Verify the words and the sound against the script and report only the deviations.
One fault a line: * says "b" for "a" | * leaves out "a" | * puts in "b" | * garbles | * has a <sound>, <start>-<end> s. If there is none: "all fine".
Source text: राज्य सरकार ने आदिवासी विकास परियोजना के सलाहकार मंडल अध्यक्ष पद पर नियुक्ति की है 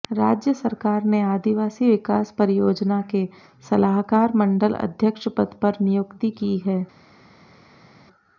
all fine